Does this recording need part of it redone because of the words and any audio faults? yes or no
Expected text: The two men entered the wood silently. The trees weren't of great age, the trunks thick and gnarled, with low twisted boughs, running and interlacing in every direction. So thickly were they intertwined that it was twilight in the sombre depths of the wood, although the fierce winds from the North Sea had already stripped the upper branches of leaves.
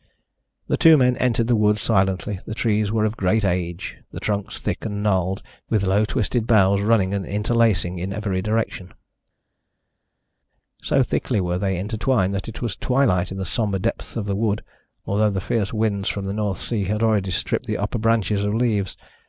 yes